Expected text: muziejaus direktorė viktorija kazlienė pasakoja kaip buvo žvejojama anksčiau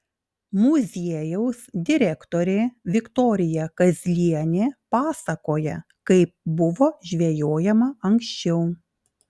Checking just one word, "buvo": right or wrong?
right